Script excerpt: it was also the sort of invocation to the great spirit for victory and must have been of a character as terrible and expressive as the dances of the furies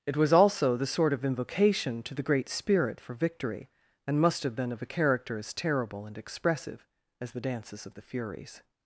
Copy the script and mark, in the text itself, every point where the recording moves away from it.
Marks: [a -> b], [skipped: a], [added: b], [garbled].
it was also the sort of invocation to the great spirit for victory and must have been of a character as terrible and expressive as the dances of the furies